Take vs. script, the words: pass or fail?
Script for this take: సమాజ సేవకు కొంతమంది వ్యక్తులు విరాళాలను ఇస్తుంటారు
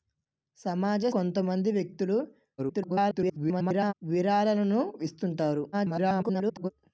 fail